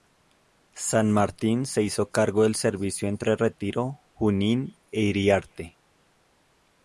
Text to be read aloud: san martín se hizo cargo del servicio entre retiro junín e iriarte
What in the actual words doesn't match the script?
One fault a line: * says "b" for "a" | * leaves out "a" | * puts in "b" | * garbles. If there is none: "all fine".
all fine